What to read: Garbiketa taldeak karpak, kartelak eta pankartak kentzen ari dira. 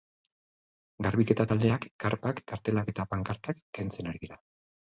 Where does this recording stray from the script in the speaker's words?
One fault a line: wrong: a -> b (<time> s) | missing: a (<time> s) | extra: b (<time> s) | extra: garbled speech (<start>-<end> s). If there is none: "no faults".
no faults